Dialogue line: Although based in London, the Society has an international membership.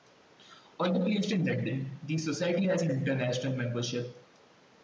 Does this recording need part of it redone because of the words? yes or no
no